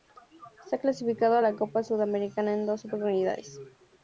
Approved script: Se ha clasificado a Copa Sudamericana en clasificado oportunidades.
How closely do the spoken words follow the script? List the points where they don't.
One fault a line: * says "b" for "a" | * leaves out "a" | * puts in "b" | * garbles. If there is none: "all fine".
* puts in "la"
* says "dos" for "clasificado"